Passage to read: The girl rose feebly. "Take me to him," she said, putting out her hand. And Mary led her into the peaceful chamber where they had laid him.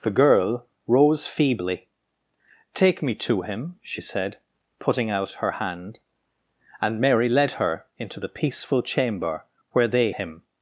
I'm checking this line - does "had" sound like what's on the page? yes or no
no